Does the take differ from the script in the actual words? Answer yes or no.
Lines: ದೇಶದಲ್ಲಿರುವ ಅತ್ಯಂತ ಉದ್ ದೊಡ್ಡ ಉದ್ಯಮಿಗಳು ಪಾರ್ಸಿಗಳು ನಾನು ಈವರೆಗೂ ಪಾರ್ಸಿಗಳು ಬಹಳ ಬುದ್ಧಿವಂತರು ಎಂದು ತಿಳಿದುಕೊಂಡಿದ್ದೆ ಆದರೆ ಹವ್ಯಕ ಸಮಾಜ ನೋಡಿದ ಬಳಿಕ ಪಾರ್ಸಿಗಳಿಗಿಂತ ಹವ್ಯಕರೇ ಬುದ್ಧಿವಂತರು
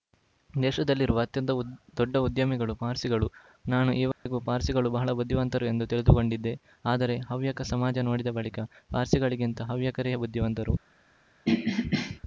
no